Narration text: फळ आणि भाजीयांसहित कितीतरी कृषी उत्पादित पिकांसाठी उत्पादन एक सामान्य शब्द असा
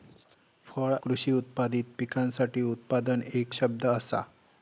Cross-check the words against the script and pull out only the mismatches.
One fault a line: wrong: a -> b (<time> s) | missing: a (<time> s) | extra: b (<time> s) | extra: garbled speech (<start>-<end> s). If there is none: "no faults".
missing: आणि भाजीयांसहित कितीतरी (0.9 s)
missing: सामान्य (3.5 s)